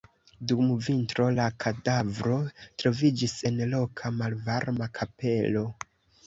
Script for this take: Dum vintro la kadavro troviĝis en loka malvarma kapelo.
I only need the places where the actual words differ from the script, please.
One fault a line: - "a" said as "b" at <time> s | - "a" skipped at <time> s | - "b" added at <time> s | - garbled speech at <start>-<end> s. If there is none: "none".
none